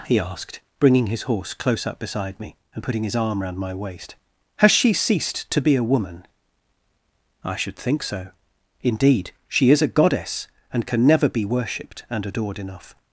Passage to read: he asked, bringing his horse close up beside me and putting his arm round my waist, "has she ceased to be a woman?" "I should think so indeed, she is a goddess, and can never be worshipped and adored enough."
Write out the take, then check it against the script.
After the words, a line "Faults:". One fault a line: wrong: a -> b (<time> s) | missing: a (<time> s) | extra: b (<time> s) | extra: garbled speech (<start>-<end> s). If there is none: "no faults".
he asked, bringing his horse close up beside me and putting his arm round my waist, "has she ceased to be a woman?" "I should think so indeed, she is a goddess, and can never be worshipped and adored enough."
Faults:
no faults